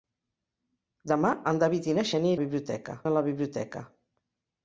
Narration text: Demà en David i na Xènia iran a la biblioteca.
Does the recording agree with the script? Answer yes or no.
no